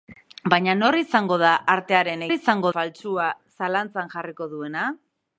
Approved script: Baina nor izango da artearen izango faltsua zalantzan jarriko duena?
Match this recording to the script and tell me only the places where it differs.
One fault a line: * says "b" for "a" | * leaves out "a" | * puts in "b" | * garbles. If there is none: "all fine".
all fine